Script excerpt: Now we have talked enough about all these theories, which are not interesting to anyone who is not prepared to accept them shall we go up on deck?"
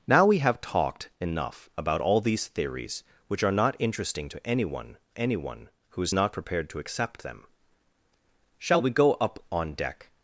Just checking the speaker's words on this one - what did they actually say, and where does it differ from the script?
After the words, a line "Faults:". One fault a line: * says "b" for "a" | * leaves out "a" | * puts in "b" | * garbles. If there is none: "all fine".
Now we have talked enough about all these theories, which are not interesting to anyone anyone who is not prepared to accept them shall we go up on deck?"
Faults:
* puts in "anyone"